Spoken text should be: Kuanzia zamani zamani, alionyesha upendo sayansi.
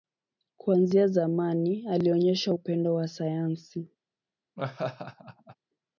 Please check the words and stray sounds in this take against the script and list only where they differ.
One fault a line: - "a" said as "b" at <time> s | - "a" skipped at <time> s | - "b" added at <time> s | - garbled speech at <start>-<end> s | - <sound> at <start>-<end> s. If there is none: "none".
- "zamani" skipped at 1.9 s
- "wa" added at 2.9 s
- laugh at 4.6-5.6 s